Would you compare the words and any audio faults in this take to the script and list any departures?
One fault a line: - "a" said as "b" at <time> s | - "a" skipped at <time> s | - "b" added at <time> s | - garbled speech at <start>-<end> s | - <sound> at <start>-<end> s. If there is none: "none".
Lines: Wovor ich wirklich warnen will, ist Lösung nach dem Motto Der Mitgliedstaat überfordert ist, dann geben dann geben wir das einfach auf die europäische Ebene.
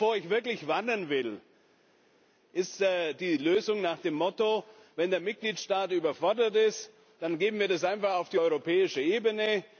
- "die" added at 2.8 s
- "Wenn" added at 5.0 s
- "dann geben" skipped at 7.6 s